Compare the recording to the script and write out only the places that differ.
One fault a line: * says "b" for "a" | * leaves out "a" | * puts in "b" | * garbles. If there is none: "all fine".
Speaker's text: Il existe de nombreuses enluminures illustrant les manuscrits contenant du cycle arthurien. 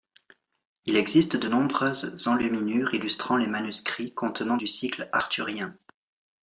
all fine